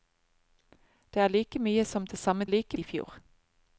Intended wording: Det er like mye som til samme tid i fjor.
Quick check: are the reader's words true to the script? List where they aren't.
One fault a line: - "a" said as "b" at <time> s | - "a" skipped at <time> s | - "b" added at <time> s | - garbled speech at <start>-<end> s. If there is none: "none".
- "tid" said as "like" at 2.5 s